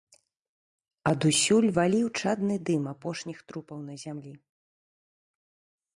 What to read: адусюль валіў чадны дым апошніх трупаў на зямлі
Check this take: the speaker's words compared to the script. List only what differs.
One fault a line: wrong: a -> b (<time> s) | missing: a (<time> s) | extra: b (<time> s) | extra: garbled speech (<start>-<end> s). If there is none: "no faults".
no faults